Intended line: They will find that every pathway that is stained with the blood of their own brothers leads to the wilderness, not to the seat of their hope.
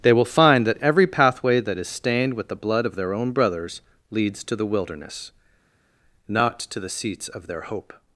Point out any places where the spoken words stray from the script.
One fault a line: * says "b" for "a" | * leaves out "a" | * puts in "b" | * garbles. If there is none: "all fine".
* says "seats" for "seat"